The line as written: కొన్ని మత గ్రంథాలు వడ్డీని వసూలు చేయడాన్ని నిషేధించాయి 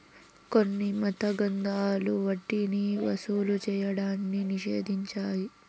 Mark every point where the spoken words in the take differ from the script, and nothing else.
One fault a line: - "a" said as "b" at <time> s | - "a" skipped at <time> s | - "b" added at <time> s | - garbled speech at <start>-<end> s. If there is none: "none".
none